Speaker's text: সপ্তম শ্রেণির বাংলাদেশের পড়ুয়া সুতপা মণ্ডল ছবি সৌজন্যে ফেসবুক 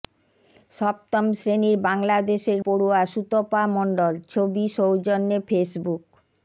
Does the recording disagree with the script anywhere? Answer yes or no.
no